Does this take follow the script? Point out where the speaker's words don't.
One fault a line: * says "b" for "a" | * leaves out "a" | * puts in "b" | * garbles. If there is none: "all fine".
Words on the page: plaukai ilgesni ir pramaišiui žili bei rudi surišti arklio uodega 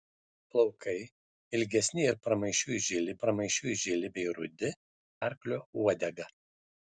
* puts in "pramaišiui žili"
* leaves out "surišti"